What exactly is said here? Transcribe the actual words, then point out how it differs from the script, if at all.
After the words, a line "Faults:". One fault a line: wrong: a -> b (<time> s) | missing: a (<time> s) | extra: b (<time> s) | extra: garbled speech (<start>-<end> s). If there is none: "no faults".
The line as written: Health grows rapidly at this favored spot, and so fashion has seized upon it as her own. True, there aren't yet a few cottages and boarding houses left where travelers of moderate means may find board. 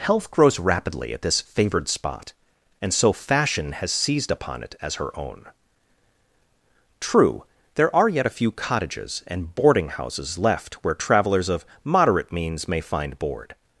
Health grows rapidly at this favored spot, and so fashion has seized upon it as her own. True, there are yet a few cottages and boarding houses left where travelers of moderate means may find board.
Faults:
wrong: aren't -> are (8.0 s)